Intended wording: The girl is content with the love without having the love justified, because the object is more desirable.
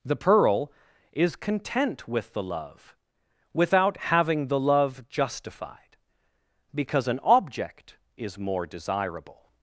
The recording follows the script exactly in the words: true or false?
false